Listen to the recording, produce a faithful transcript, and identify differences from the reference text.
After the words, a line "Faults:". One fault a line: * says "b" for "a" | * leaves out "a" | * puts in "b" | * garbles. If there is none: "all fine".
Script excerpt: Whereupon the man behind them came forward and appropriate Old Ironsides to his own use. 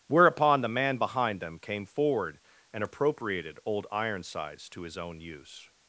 Whereupon the man behind them came forward and appropriated Old Ironsides to his own use.
Faults:
* says "appropriated" for "appropriate"